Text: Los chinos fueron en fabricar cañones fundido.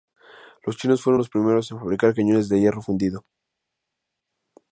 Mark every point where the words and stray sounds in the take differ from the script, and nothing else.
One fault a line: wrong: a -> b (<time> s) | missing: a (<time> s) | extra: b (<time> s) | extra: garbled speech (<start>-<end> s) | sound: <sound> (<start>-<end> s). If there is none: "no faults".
extra: los primeros (1.2 s)
extra: de hierro (2.5 s)